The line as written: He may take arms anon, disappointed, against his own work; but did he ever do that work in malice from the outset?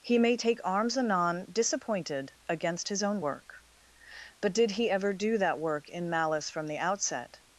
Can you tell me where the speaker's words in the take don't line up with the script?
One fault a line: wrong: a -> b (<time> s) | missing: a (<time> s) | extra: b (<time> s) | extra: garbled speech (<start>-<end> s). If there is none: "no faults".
no faults